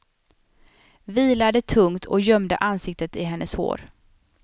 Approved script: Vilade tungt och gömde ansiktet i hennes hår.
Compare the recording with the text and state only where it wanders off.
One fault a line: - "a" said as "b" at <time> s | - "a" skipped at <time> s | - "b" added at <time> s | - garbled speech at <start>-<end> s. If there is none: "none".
none